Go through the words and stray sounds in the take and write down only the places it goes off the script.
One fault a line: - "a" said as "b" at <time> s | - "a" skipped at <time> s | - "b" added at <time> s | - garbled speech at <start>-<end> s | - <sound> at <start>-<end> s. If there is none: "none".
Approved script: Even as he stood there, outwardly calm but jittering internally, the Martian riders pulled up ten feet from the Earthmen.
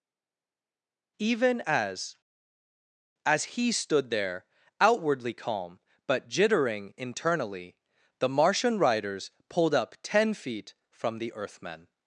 - "as" added at 3.2 s